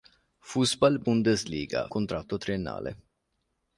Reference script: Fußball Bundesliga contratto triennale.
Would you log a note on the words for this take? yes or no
no